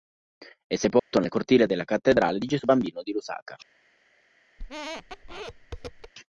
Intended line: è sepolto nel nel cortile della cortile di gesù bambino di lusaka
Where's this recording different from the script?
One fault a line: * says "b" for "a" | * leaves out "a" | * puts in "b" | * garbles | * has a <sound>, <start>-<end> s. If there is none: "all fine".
* has a dropout, 1.0-1.1 s
* leaves out "nel"
* says "cattedrale" for "cortile"
* has a squeak, 4.6-6.1 s